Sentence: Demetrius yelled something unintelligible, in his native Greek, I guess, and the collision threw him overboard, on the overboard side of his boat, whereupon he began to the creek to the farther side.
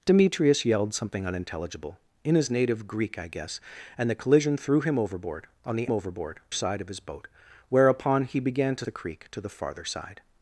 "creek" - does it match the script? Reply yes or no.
yes